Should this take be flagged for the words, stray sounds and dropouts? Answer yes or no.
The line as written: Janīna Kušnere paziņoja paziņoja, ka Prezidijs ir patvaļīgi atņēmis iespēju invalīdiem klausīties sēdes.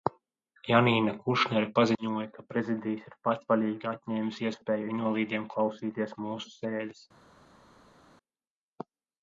yes